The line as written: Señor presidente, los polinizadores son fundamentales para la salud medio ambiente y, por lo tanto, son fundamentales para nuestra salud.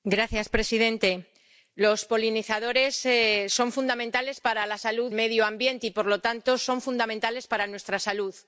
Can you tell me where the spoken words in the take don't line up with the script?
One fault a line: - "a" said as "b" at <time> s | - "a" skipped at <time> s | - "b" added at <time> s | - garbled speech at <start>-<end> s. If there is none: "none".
none